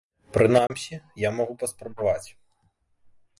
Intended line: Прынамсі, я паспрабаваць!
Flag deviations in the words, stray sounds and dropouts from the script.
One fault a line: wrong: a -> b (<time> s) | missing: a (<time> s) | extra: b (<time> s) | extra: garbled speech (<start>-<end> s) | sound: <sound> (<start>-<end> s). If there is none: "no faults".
sound: dropout (0.7-0.7 s)
extra: магу (1.4 s)